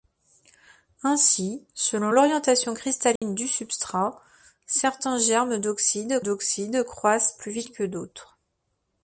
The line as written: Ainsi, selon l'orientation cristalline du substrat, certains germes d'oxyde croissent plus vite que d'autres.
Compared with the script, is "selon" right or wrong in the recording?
right